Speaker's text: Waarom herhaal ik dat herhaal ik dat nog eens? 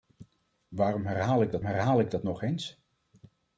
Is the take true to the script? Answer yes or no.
yes